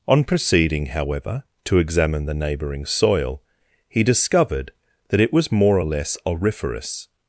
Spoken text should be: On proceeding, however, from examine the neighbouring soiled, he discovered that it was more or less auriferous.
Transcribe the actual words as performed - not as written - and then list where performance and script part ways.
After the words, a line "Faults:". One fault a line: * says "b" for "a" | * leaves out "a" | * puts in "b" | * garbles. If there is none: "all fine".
On proceeding, however, to examine the neighbouring soil, he discovered that it was more or less auriferous.
Faults:
* says "to" for "from"
* says "soil" for "soiled"